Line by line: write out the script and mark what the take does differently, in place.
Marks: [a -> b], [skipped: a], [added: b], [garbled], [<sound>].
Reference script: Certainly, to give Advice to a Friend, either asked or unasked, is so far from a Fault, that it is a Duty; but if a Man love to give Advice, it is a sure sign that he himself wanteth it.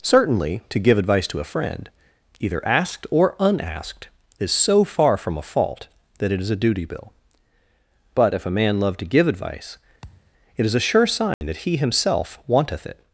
Certainly, to give Advice to a Friend, either asked or unasked, is so far from a Fault, that it is a Duty; [added: bill] but if a Man love to give Advice, [thud] it is a sure sign [dropout] that he himself wanteth it.